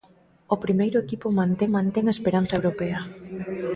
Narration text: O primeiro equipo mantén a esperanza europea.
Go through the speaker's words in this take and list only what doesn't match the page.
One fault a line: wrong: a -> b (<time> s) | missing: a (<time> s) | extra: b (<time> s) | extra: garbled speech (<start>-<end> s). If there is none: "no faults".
extra: mantén (1.8 s)